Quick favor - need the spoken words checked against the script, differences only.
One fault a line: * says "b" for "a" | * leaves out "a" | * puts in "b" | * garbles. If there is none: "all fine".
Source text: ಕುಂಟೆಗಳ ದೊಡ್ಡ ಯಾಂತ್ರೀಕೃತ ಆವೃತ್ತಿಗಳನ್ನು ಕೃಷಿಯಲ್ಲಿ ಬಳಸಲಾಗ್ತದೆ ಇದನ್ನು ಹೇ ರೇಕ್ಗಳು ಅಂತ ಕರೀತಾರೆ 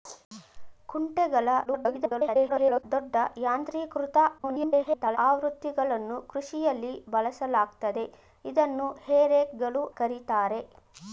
* garbles
* garbles
* leaves out "ಅಂತ"